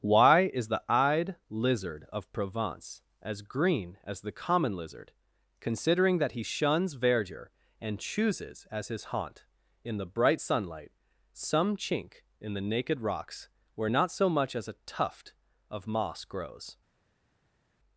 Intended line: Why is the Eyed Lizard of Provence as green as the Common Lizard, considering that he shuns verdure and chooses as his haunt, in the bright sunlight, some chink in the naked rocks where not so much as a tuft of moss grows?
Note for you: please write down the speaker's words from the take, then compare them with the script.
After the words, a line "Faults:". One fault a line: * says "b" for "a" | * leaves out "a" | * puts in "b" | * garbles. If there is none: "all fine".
Why is the Eyed Lizard of Provence as green as the Common Lizard, considering that he shuns verdure and chooses as his haunt, in the bright sunlight, some chink in the naked rocks where not so much as a tuft of moss grows?
Faults:
all fine